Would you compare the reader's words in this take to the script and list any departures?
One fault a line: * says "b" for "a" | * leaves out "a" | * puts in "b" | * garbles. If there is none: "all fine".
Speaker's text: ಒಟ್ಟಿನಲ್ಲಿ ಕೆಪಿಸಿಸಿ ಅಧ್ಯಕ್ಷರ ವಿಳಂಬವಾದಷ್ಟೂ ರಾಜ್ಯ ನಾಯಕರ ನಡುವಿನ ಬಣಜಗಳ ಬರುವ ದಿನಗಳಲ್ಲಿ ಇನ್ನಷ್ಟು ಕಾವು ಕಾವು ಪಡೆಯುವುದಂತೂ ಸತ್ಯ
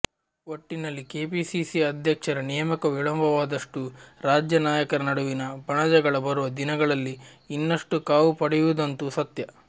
* puts in "ನೇಮಕ"
* leaves out "ಕಾವು"